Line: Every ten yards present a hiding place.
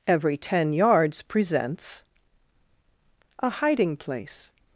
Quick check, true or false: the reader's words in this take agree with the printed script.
false